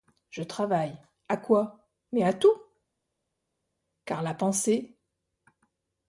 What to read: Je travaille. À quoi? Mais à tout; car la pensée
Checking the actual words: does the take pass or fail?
pass